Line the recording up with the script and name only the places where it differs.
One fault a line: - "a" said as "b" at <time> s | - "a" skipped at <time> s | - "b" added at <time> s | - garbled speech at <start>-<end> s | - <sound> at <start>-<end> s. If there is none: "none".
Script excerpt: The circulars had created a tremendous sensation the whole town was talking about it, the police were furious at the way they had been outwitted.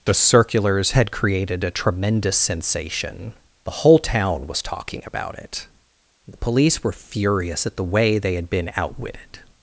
none